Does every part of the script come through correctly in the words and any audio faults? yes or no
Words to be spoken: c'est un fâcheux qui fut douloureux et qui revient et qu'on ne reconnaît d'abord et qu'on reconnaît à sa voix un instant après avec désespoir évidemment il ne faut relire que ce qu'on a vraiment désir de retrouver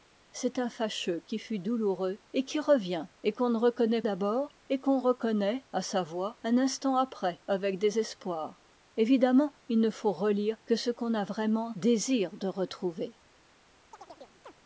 no